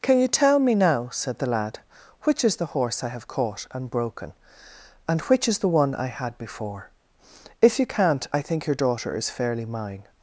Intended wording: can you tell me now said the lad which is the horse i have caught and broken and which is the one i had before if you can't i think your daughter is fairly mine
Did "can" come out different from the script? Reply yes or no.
no